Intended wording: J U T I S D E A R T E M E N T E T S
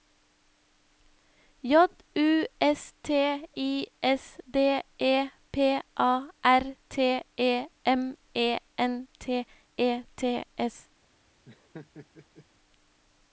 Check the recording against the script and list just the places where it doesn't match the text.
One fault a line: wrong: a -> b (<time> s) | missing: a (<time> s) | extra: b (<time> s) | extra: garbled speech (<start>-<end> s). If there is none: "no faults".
extra: S (2.6 s)
extra: P (5.5 s)